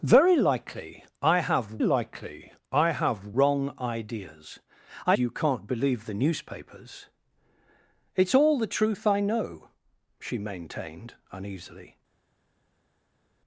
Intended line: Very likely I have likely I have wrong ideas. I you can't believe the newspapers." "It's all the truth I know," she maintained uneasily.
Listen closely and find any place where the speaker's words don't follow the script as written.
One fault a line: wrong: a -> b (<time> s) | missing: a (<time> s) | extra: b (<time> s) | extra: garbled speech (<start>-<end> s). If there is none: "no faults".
no faults